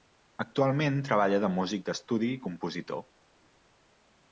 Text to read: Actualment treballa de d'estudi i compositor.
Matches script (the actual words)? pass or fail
fail